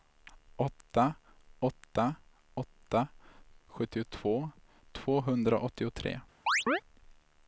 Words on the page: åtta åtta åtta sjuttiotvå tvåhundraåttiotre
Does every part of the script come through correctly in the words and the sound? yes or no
no